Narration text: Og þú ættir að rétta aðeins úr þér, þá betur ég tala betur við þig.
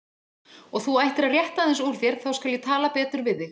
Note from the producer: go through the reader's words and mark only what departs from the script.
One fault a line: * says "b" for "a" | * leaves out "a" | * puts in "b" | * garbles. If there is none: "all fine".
* says "skal" for "betur"